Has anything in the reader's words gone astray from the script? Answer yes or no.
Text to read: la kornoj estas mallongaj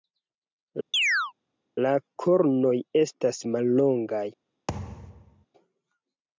no